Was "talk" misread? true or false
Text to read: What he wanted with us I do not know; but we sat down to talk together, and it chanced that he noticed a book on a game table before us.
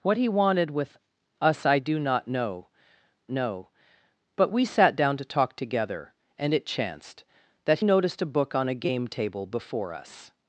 false